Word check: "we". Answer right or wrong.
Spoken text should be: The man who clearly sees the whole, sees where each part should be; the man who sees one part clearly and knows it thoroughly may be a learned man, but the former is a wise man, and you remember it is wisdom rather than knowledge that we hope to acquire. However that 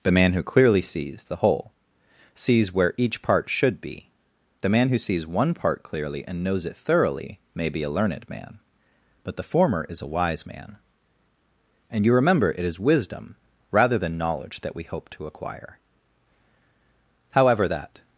right